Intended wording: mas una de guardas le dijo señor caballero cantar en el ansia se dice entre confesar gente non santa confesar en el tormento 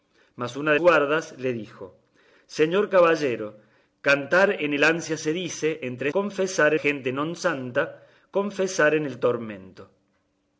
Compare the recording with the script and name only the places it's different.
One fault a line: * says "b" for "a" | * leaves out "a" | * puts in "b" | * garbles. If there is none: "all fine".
all fine